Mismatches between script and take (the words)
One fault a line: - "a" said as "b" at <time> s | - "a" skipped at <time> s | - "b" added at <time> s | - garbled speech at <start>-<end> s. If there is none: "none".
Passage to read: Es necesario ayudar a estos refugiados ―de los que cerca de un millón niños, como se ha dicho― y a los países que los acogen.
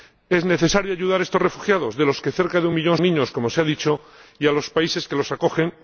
none